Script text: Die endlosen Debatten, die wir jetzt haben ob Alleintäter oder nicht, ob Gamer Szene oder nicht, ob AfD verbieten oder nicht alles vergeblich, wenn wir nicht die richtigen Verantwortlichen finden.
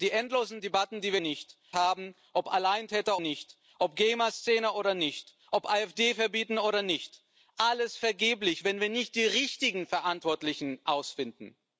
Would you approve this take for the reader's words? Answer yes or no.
no